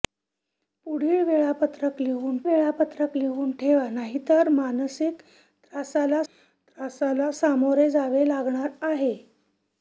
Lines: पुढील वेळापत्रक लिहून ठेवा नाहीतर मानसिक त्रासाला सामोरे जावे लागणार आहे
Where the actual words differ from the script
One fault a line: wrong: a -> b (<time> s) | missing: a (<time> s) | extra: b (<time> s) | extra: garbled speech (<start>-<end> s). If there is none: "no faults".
extra: वेळापत्रक लिहून (2.4 s)
extra: त्रासाला (6.2 s)